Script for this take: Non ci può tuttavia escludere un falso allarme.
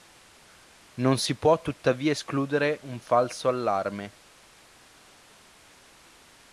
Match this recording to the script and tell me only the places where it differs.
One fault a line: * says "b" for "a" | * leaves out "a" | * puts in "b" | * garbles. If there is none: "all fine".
* says "si" for "ci"